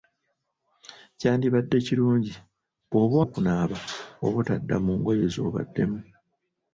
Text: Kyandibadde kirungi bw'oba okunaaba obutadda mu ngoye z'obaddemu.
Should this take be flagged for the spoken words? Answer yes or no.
no